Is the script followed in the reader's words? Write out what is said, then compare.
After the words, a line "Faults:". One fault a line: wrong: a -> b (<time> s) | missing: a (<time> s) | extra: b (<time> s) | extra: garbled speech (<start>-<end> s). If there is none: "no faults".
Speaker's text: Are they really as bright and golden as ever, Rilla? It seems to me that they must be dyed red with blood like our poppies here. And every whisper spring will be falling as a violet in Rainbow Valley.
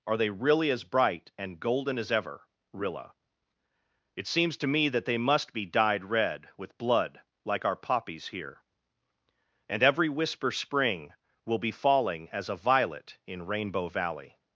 Are they really as bright and golden as ever, Rilla? It seems to me that they must be dyed red with blood like our poppies here. And every whisper spring will be falling as a violet in Rainbow Valley.
Faults:
no faults